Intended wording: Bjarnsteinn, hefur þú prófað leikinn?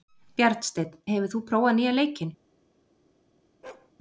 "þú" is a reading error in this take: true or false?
false